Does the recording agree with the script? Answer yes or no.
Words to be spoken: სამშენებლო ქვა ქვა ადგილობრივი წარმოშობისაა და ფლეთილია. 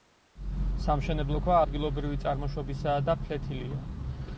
no